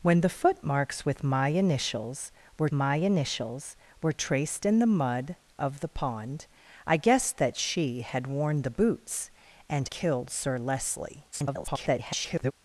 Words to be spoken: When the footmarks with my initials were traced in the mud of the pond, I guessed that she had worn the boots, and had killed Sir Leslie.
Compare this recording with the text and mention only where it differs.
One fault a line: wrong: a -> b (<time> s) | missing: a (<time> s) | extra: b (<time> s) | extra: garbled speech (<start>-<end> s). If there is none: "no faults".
extra: my initials were (2.7 s)
missing: had (9.9 s)
extra: garbled speech (11.3-12.5 s)